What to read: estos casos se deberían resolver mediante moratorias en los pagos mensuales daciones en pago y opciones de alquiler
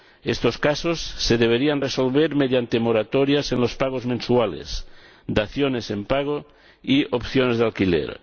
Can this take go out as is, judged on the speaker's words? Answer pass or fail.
pass